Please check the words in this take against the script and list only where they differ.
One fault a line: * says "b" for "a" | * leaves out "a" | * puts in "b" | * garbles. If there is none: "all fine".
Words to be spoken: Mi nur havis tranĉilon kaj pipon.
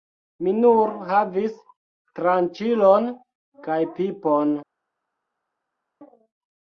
all fine